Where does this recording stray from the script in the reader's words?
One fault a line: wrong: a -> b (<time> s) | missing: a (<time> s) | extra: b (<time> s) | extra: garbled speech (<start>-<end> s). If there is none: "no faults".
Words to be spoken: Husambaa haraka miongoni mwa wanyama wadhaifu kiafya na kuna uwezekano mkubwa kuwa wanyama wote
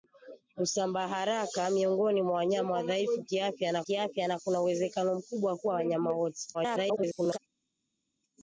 extra: kiafya na (3.8 s)
extra: garbled speech (6.5-7.4 s)